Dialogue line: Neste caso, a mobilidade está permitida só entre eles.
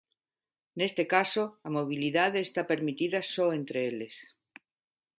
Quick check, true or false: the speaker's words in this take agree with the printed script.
true